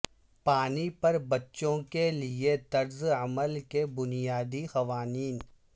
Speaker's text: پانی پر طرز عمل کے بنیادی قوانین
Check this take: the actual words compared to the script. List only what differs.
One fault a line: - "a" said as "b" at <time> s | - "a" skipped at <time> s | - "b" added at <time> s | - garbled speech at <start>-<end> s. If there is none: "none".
- "بچوں کے لئے" added at 1.3 s